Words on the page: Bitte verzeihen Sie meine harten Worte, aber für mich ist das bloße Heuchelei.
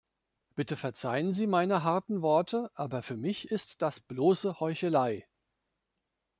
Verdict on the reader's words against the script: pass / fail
pass